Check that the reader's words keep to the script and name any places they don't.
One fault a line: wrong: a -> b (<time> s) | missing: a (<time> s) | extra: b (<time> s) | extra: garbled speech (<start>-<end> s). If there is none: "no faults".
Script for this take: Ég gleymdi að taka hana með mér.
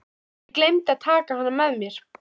no faults